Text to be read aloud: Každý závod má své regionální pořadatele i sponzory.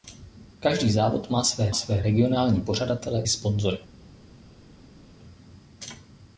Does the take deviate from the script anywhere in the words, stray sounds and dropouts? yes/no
yes